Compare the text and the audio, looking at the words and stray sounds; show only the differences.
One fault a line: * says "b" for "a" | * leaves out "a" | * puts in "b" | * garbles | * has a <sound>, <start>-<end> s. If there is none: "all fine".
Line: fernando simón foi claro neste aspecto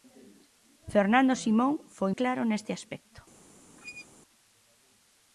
* has a squeak, 3.8-4.1 s